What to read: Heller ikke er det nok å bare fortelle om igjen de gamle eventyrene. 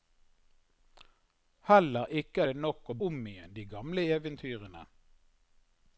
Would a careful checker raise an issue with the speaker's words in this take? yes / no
yes